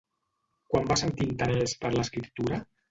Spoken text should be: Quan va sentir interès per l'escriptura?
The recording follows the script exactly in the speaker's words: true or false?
true